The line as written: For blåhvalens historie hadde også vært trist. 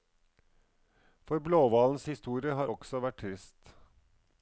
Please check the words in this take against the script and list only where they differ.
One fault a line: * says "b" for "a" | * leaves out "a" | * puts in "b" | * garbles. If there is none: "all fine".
* says "har" for "hadde"